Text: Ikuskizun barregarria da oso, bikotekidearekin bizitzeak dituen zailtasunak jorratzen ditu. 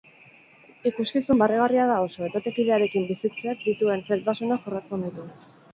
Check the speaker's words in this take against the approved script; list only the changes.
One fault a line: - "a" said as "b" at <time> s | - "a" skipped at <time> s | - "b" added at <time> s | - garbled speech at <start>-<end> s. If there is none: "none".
none